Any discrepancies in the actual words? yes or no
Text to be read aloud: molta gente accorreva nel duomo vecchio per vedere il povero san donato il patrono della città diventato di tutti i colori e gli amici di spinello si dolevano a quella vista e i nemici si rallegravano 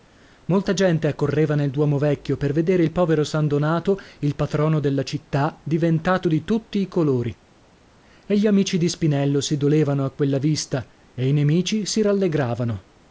no